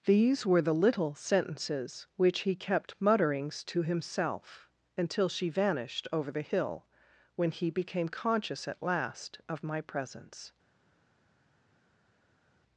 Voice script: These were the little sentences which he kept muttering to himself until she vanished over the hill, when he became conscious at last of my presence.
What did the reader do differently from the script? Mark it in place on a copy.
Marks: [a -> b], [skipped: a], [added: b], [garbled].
These were the little sentences which he kept [muttering -> mutterings] to himself until she vanished over the hill, when he became conscious at last of my presence.